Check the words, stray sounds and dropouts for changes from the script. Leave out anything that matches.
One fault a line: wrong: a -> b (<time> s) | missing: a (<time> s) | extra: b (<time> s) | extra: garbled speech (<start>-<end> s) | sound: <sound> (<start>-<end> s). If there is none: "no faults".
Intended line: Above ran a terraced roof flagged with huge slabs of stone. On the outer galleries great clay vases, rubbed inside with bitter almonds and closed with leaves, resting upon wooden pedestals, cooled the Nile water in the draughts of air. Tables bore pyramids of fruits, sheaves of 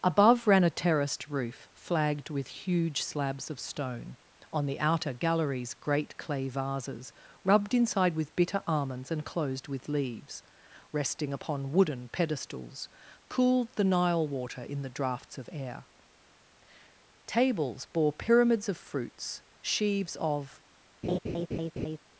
sound: laugh (21.0-22.0 s)